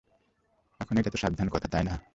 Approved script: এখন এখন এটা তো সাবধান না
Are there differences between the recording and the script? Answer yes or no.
yes